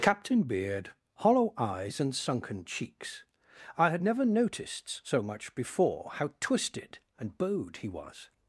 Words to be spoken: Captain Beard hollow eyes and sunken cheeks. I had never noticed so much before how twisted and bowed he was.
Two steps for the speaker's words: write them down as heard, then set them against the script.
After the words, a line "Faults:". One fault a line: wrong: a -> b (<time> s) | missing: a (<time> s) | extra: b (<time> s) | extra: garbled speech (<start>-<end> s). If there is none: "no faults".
Captain Beard hollow eyes and sunken cheeks. I had never noticed so much before how twisted and bowed he was.
Faults:
no faults